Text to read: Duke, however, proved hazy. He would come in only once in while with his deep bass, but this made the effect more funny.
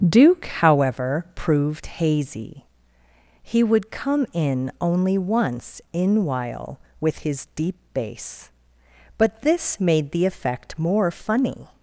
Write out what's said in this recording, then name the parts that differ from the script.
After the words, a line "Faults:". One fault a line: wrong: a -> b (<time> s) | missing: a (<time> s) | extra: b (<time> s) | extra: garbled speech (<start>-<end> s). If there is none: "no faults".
Duke, however, proved hazy. He would come in only once in while with his deep bass, but this made the effect more funny.
Faults:
no faults